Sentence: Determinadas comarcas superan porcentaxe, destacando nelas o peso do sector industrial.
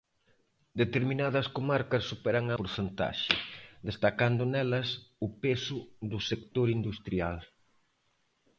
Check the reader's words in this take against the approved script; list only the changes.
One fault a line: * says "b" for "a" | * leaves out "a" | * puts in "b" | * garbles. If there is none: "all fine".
all fine